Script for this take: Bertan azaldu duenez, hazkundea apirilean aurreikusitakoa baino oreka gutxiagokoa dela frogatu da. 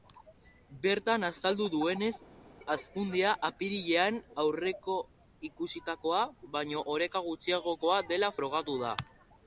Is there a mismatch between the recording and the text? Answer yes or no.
no